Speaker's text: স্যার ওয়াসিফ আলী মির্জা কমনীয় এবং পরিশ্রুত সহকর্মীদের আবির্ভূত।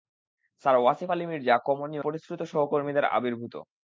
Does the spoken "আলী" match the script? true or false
true